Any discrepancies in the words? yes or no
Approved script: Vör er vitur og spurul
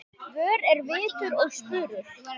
no